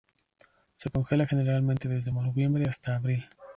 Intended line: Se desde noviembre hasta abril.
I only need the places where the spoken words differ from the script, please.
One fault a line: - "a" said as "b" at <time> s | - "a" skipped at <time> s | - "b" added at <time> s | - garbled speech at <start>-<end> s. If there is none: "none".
- "congela generalmente" added at 0.9 s